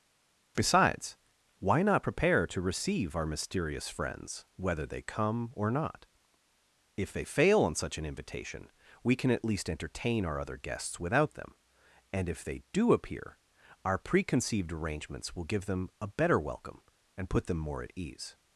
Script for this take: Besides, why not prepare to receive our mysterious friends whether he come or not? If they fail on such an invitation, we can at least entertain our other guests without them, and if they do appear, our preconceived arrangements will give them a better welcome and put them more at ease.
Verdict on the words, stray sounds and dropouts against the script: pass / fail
fail